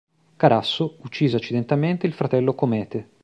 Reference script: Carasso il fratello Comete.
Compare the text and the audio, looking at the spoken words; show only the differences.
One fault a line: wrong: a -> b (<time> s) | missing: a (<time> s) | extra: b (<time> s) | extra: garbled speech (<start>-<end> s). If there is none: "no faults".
extra: uccise accidentalmente (1.0 s)